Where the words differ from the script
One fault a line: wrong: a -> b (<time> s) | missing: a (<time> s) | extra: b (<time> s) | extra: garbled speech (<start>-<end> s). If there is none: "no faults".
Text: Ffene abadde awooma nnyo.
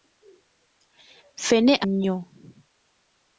missing: abadde awooma (1.7 s)